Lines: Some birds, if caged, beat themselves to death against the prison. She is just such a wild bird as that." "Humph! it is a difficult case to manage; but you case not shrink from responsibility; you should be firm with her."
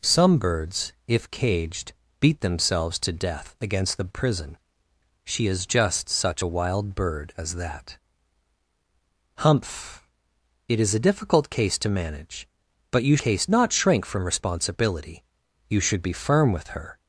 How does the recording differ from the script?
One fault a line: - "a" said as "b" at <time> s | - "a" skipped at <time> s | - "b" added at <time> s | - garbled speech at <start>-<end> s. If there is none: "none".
none